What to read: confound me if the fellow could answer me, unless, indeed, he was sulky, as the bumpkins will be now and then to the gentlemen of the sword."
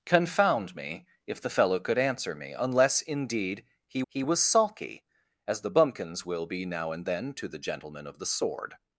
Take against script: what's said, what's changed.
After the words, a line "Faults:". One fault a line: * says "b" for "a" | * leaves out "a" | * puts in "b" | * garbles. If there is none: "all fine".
confound me if the fellow could answer me, unless, indeed, he he was sulky, as the bumpkins will be now and then to the gentlemen of the sword."
Faults:
* puts in "he"